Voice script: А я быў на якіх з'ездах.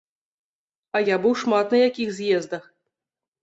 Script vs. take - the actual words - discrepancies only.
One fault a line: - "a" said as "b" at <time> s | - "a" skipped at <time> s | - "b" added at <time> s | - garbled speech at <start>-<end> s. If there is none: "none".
- "шмат" added at 1.4 s